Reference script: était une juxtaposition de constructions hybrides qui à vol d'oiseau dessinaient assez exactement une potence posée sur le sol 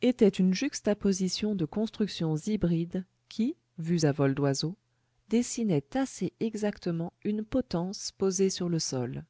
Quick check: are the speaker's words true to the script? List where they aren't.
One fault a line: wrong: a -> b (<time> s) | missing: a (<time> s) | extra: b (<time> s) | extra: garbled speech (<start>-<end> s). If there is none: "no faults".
extra: vues (3.8 s)